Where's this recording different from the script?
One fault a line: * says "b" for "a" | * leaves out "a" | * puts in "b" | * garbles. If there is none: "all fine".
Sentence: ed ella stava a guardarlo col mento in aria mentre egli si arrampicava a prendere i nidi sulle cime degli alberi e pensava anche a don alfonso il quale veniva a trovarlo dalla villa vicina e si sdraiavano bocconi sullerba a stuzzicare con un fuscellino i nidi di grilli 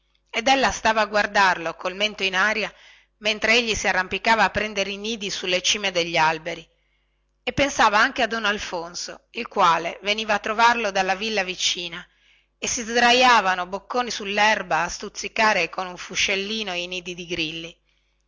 all fine